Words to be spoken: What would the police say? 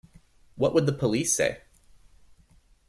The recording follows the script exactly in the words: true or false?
true